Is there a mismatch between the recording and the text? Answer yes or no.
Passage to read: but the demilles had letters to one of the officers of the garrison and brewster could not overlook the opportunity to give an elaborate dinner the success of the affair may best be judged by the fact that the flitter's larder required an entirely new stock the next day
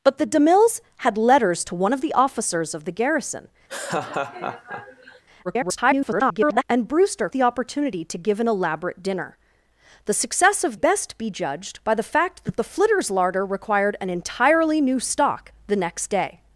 yes